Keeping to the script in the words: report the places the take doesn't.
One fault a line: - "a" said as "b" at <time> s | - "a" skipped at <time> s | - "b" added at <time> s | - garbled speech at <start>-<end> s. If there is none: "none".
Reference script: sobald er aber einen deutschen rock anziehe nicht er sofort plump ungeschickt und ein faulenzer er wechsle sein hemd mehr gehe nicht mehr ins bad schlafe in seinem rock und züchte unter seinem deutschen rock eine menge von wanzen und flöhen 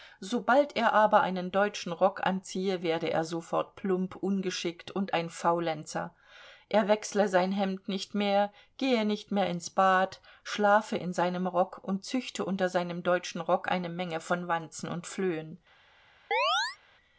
- "nicht" said as "werde" at 2.8 s
- "nicht" added at 7.9 s